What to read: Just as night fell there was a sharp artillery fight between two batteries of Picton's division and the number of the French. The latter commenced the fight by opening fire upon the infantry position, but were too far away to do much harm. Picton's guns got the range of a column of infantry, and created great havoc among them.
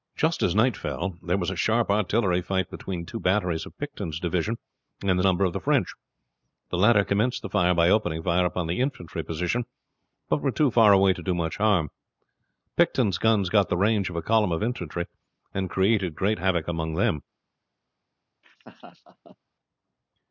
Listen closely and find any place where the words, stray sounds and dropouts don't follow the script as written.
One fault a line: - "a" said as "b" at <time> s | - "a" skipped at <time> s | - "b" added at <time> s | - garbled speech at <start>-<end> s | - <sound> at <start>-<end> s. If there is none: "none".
- laugh at 18.4-19.4 s